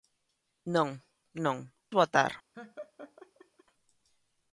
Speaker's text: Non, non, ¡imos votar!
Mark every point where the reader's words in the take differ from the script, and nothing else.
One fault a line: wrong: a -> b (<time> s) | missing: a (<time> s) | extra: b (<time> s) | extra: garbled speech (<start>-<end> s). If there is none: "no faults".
missing: imos (1.6 s)